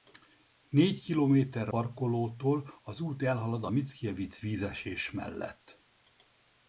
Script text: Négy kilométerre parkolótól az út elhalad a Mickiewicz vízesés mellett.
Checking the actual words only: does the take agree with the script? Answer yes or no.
yes